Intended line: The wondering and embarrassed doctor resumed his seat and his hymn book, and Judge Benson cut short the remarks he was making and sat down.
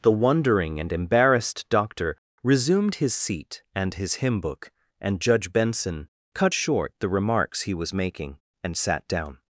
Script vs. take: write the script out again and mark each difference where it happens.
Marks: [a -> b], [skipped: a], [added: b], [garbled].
The wondering and embarrassed doctor resumed his seat and his hymn book, and Judge Benson cut short the remarks he was making and sat down.